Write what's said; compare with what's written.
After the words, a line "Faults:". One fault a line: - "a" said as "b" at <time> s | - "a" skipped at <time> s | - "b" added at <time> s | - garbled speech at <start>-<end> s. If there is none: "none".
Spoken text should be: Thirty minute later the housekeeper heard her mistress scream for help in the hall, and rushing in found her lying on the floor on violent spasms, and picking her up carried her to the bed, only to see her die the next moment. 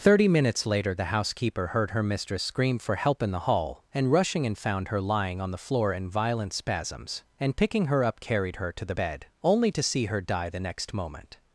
Thirty minutes later the housekeeper heard her mistress scream for help in the hall, and rushing in found her lying on the floor in violent spasms, and picking her up carried her to the bed, only to see her die the next moment.
Faults:
- "minute" said as "minutes" at 0.3 s
- "on" said as "in" at 5.9 s